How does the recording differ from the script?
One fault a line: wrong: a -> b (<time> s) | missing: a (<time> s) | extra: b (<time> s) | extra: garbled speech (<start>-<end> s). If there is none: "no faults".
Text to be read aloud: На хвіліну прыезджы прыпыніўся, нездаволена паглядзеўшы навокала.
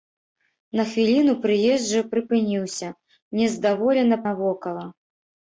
missing: паглядзеўшы (4.2 s)